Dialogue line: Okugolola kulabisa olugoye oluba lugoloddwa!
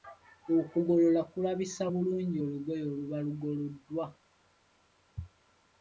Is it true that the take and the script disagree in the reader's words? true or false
true